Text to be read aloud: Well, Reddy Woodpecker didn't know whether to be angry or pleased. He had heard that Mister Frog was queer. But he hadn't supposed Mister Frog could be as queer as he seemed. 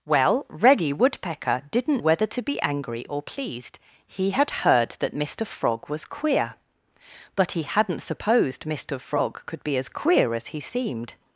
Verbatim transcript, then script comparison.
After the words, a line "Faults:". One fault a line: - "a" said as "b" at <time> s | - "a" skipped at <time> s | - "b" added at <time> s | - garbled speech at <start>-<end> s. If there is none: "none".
Well, Reddy Woodpecker didn't whether to be angry or pleased. He had heard that Mister Frog was queer. But he hadn't supposed Mister Frog could be as queer as he seemed.
Faults:
- "know" skipped at 2.0 s